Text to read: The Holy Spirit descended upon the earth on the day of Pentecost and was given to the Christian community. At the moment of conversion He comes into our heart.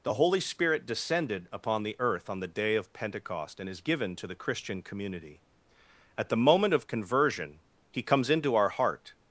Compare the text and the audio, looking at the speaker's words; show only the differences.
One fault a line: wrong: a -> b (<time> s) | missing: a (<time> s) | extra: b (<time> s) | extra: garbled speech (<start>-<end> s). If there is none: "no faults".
wrong: was -> is (3.7 s)